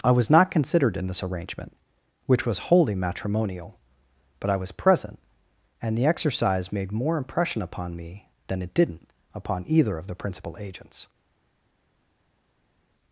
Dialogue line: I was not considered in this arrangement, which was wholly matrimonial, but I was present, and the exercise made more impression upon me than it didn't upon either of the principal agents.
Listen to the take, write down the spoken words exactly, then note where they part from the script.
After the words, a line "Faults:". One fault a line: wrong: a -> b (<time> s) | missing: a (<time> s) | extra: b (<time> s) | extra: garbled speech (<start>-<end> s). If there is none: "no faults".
I was not considered in this arrangement, which was wholly matrimonial, but I was present, and the exercise made more impression upon me than it didn't upon either of the principal agents.
Faults:
no faults